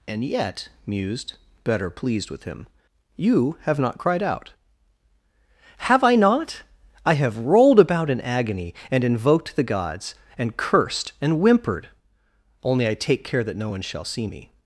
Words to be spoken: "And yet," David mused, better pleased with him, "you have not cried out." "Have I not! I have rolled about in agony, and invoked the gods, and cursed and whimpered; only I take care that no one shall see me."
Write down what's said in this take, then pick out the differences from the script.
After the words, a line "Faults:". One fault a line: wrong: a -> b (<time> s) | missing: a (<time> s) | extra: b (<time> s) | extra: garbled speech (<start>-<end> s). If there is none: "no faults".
"And yet," mused, better pleased with him, "you have not cried out." "Have I not! I have rolled about in agony, and invoked the gods, and cursed and whimpered; only I take care that no one shall see me."
Faults:
missing: David (0.7 s)